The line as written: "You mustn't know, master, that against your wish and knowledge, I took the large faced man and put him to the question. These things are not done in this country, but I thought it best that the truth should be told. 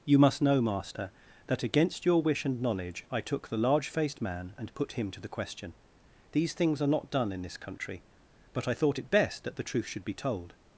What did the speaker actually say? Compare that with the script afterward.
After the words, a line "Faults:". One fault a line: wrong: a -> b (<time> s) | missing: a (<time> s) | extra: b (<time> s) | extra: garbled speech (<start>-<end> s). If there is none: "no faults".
"You must know, master, that against your wish and knowledge, I took the large faced man and put him to the question. These things are not done in this country, but I thought it best that the truth should be told.
Faults:
wrong: mustn't -> must (0.2 s)